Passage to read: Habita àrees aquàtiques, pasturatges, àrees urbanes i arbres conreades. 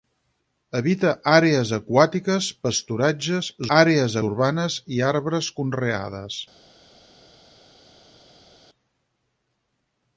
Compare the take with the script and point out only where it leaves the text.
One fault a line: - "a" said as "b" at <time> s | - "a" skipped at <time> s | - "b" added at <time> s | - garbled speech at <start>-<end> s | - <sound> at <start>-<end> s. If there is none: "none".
none